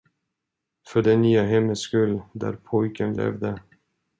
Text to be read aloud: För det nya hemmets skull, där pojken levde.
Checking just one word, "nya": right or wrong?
right